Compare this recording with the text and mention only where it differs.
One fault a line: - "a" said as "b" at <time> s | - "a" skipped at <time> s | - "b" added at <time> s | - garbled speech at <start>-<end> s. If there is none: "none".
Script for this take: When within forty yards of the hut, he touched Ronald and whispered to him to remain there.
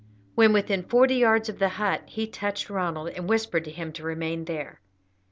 none